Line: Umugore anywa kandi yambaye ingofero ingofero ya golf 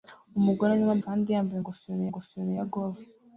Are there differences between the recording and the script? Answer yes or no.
no